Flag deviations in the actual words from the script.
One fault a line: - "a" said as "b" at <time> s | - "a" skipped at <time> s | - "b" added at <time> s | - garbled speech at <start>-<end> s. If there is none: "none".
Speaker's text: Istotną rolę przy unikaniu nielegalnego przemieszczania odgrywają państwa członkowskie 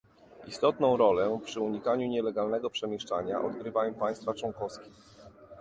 none